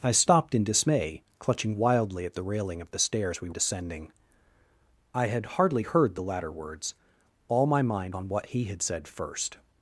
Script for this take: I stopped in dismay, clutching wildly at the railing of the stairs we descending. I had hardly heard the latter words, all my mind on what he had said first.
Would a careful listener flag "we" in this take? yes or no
no